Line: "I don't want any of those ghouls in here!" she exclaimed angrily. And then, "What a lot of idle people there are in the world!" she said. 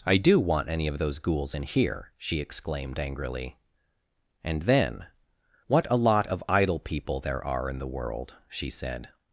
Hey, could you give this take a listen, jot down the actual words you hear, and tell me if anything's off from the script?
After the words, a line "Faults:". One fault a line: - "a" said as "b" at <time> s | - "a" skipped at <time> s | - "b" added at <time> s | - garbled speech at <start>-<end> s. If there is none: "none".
"I do want any of those ghouls in here!" she exclaimed angrily. And then, "What a lot of idle people there are in the world!" she said.
Faults:
- "don't" said as "do" at 0.2 s